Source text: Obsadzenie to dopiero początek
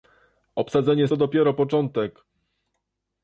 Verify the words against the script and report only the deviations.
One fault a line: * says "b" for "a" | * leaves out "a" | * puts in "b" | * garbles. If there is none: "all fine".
all fine